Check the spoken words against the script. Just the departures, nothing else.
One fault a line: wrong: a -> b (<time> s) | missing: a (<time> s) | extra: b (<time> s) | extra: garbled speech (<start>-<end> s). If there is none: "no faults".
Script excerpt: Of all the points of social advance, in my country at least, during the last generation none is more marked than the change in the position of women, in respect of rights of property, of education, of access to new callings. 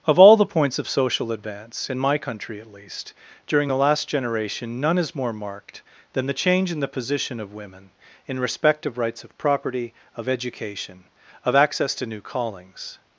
no faults